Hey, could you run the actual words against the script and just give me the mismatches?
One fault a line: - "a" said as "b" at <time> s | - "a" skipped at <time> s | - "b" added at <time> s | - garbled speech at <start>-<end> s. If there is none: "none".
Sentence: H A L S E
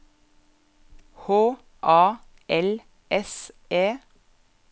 none